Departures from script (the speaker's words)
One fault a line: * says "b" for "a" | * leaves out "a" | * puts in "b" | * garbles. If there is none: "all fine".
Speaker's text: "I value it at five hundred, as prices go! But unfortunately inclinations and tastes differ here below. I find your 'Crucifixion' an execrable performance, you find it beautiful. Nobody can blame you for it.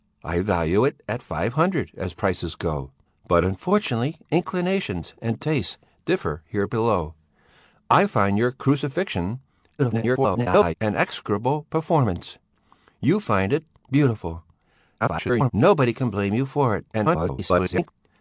* garbles
* garbles
* garbles